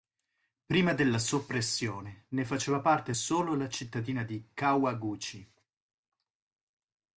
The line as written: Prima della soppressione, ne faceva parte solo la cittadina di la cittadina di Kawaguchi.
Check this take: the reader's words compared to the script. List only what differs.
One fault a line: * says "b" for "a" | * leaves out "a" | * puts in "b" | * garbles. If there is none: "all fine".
* leaves out "la cittadina di"